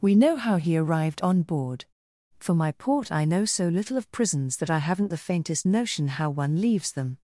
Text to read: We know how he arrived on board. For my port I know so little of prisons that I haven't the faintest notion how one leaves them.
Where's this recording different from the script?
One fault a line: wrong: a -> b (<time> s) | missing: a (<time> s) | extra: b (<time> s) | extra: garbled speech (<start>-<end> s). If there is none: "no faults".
no faults